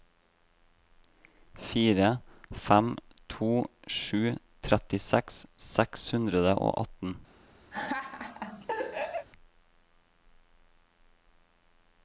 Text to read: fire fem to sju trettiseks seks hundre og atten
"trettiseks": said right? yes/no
yes